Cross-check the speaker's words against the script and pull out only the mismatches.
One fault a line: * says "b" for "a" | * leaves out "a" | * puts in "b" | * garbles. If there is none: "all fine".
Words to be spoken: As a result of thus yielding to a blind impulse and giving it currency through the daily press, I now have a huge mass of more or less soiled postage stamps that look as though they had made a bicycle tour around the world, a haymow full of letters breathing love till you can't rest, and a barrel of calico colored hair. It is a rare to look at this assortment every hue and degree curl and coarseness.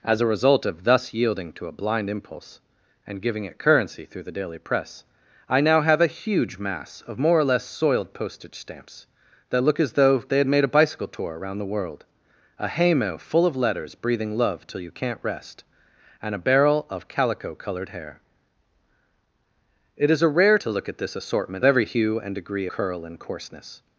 all fine